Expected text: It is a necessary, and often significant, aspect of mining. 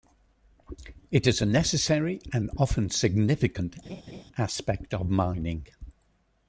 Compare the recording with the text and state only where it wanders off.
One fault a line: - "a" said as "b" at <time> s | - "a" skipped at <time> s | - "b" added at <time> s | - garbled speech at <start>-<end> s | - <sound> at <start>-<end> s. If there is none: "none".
- laugh at 3.8-4.2 s